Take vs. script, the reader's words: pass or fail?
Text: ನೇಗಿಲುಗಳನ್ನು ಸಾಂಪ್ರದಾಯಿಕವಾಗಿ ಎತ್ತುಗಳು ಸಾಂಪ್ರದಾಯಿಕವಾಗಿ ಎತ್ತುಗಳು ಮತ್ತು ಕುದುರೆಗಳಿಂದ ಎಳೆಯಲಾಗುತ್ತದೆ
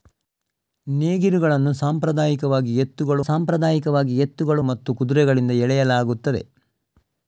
pass